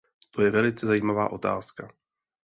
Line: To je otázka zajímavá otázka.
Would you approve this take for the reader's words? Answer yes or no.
no